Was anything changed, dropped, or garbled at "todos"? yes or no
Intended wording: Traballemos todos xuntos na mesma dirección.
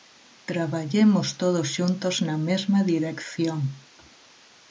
no